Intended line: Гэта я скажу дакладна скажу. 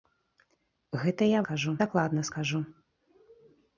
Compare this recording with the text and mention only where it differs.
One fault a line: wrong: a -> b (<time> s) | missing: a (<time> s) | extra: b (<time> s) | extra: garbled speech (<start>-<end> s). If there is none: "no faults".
no faults